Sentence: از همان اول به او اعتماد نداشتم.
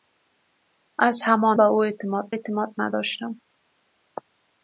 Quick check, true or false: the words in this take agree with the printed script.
false